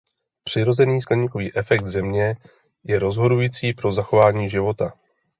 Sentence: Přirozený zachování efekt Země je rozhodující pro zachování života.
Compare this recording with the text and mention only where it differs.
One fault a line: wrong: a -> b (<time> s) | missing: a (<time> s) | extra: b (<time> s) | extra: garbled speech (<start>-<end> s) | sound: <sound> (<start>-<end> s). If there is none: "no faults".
wrong: zachování -> skleníkový (1.0 s)